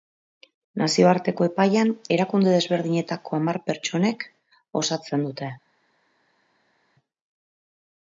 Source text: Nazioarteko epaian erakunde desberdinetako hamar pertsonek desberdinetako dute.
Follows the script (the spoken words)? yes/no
no